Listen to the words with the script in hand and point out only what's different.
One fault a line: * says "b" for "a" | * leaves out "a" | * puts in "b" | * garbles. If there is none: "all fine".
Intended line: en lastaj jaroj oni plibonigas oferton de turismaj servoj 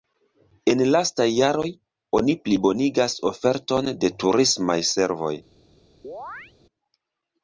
all fine